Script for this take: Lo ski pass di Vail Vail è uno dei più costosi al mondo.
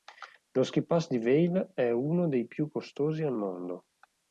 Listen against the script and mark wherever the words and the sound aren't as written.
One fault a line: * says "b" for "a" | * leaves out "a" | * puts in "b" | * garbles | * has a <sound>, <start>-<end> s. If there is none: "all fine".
* leaves out "Vail"